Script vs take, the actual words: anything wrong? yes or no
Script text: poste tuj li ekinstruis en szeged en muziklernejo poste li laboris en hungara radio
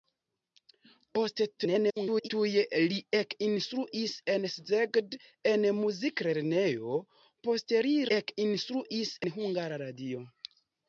yes